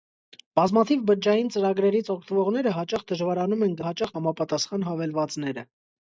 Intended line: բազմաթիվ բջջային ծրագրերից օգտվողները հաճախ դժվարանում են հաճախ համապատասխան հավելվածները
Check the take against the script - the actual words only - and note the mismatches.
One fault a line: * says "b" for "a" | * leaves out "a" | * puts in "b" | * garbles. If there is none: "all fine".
all fine